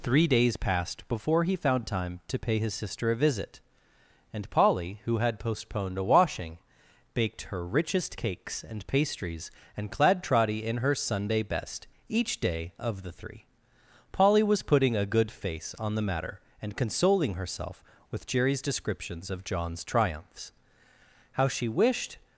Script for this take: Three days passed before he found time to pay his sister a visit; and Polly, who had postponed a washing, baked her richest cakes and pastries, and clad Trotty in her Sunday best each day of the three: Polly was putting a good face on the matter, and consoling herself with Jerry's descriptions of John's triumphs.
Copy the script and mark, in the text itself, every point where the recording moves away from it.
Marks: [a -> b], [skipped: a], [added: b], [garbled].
Three days passed before he found time to pay his sister a visit; and Polly, who had postponed a washing, baked her richest cakes and pastries, and clad Trotty in her Sunday best each day of the three: Polly was putting a good face on the matter, and consoling herself with Jerry's descriptions of John's triumphs. [added: How she wished]